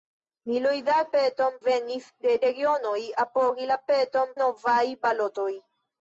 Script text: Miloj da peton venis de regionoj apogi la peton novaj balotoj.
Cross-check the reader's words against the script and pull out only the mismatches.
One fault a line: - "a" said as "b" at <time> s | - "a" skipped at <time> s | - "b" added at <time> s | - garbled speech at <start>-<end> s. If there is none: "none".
none